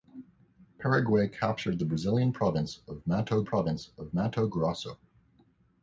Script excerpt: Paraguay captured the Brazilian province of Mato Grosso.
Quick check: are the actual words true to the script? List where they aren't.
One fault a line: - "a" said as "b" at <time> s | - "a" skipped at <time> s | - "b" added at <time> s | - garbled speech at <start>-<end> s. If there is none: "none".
- "province of Mato" added at 3.4 s